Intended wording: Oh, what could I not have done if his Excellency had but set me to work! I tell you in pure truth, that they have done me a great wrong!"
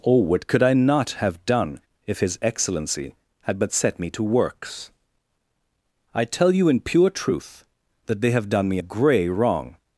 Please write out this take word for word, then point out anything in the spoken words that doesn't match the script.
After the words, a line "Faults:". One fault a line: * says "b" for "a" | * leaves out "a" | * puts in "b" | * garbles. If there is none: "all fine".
Oh, what could I not have done if his Excellency had but set me to works! I tell you in pure truth, that they have done me a grey wrong!"
Faults:
* says "works" for "work"
* says "grey" for "great"